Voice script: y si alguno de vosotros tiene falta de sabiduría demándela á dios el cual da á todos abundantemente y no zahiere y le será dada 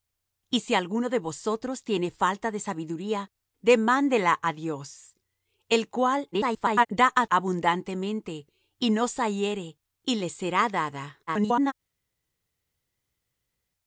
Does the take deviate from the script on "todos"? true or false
true